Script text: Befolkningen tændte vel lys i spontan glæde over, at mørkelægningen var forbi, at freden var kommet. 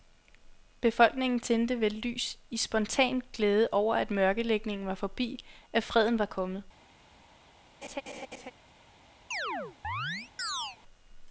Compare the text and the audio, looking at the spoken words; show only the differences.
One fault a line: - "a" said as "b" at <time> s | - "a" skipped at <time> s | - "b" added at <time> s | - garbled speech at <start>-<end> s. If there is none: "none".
none